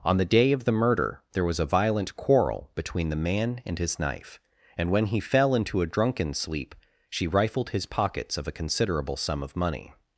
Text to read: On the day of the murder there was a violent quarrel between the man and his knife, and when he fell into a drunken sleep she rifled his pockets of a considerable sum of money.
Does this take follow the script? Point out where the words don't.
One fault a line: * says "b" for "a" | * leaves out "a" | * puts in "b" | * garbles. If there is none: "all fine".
all fine